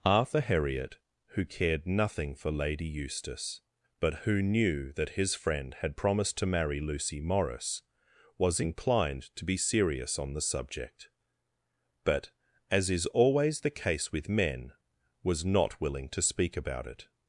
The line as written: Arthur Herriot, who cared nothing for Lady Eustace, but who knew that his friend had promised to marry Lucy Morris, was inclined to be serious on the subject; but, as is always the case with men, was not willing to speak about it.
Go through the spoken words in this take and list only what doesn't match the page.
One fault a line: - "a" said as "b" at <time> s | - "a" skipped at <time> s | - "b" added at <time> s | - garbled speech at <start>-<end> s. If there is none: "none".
none